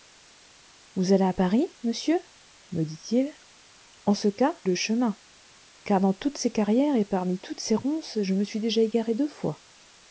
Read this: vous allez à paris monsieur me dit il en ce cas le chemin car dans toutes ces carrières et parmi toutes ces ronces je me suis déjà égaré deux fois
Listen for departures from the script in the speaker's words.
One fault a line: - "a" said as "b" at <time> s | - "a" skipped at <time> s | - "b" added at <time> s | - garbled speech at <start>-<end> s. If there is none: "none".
none